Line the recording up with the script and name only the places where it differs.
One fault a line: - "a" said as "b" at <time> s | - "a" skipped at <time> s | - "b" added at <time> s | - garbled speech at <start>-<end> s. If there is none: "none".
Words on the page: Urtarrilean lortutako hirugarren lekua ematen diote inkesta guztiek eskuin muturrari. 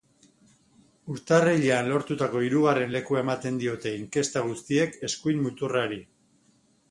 none